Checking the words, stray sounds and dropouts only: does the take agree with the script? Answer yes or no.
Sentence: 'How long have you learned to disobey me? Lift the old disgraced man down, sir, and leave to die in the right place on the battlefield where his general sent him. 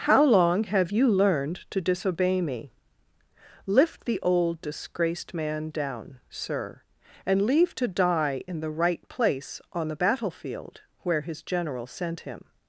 yes